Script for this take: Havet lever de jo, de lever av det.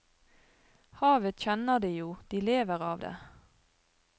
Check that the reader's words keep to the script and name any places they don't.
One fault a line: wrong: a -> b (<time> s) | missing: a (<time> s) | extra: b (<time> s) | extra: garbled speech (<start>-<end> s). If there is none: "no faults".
wrong: lever -> kjenner (1.4 s)